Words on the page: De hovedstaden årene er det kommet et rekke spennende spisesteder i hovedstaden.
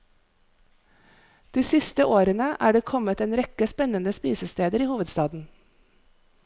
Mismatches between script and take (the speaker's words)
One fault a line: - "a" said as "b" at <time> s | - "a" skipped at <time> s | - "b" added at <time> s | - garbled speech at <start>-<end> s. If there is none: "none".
- "hovedstaden" said as "siste" at 1.6 s
- "et" said as "en" at 3.3 s